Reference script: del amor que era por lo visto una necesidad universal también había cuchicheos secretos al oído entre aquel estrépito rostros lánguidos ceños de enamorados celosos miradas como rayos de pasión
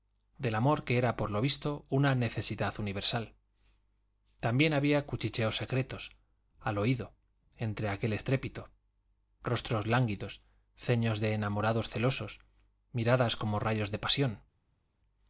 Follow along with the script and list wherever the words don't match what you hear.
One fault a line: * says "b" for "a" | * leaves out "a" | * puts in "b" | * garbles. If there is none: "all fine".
all fine